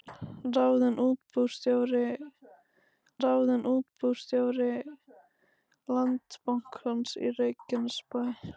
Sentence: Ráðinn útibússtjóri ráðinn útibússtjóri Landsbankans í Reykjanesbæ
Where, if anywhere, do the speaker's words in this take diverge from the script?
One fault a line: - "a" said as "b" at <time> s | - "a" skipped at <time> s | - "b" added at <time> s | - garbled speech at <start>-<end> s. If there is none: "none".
none